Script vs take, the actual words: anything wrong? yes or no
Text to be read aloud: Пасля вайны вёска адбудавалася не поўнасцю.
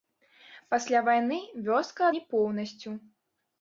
yes